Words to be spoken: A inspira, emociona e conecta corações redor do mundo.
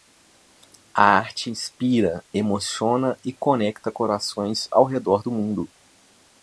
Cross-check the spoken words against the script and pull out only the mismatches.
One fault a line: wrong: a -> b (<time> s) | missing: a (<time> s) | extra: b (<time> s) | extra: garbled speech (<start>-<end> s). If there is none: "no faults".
extra: arte (1.2 s)
extra: ao (4.7 s)